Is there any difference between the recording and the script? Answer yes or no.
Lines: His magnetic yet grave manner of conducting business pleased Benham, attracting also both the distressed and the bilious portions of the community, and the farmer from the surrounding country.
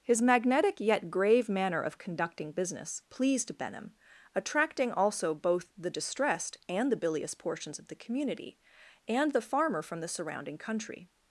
no